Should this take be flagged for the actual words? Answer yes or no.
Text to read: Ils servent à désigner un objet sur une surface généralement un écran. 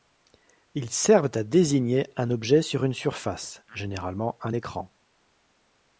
no